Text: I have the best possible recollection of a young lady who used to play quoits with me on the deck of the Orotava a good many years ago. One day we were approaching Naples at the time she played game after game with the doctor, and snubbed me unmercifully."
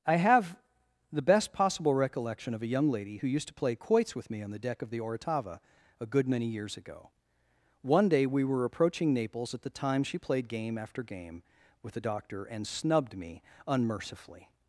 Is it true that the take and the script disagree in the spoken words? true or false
false